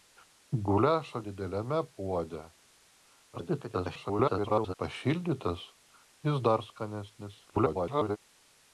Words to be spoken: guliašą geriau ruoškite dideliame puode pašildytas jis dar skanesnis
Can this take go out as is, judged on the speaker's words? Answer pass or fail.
fail